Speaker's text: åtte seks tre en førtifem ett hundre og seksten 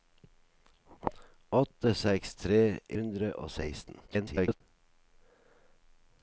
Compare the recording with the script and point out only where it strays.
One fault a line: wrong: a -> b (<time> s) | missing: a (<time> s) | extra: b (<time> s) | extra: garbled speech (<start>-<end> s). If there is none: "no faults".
missing: en førtifem ett (2.6 s)
extra: garbled speech (4.1-4.6 s)